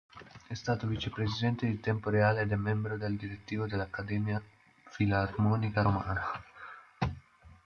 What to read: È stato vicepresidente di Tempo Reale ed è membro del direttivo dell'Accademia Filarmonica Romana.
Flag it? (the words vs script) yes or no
no